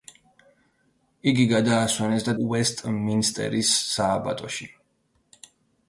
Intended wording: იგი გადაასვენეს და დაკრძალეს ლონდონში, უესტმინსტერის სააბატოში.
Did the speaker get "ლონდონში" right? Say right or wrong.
wrong